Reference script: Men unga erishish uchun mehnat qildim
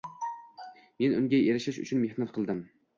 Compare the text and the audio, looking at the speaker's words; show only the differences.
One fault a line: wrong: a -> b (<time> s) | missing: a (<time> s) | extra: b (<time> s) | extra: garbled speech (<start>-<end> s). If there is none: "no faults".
no faults